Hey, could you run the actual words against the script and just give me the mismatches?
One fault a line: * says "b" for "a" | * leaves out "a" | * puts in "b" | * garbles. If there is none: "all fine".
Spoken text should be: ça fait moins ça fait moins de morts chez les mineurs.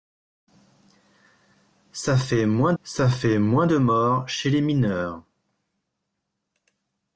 all fine